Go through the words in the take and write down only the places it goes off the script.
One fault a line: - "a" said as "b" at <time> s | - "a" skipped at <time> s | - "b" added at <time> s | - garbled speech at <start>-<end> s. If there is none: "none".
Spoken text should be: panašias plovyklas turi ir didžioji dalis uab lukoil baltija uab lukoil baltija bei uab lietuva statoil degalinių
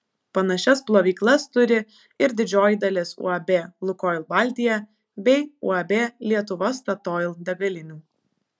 - "uab lukoil baltija" skipped at 4.8 s